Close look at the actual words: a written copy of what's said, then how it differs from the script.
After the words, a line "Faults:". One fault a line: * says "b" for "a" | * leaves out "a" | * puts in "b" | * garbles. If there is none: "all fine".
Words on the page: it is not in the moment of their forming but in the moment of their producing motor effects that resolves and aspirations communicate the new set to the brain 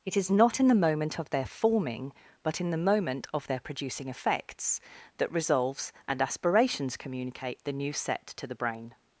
it is not in the moment of their forming but in the moment of their producing effects that resolves and aspirations communicate the new set to the brain
Faults:
* leaves out "motor"